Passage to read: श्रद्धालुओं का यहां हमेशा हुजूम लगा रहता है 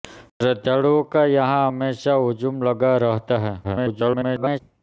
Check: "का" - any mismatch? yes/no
no